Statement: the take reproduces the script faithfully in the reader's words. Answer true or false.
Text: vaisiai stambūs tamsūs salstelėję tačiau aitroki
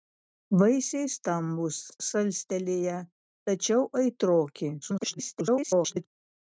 false